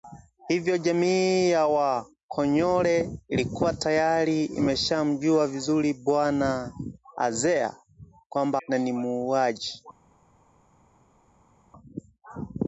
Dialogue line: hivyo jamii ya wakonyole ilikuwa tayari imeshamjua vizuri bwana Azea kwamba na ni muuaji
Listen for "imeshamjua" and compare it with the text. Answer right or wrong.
right